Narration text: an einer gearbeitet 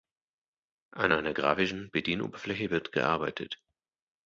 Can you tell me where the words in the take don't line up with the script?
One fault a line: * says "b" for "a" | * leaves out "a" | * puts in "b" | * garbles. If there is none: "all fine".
* puts in "grafischen bedienoberfläche wird"